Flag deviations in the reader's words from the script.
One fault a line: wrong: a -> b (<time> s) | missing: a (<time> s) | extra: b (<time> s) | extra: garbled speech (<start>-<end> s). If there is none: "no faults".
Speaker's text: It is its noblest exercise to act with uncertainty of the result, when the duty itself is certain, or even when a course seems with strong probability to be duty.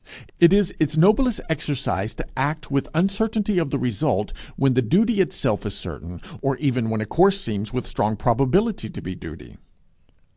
no faults